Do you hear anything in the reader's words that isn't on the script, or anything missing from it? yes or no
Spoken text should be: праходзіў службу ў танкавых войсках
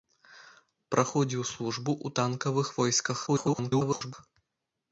yes